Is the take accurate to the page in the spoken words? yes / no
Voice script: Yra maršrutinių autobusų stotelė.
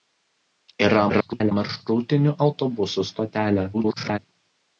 no